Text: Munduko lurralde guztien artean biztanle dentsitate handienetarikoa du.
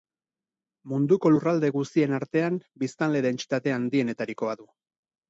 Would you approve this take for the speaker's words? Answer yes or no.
yes